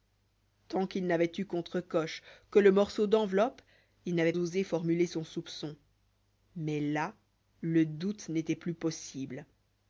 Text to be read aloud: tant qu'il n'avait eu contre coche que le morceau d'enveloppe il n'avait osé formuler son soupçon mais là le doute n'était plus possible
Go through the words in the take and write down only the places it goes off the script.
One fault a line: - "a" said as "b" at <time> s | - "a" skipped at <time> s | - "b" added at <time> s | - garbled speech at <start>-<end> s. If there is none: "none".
none